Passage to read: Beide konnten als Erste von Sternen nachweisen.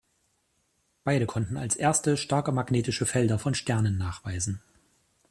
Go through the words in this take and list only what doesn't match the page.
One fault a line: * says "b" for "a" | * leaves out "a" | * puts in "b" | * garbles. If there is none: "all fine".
* puts in "starke magnetische Felder"